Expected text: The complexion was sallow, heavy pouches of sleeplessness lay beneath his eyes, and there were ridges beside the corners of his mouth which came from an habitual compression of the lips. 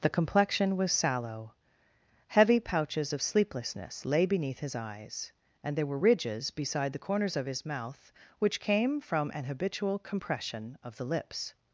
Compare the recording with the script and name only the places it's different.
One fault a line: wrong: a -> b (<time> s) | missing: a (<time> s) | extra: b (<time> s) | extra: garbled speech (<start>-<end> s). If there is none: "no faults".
no faults